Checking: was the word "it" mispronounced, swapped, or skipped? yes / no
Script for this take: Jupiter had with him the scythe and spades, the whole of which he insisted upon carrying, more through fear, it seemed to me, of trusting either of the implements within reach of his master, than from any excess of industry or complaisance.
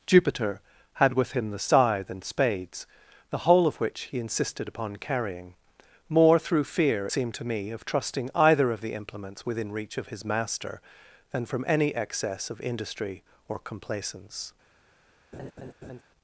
yes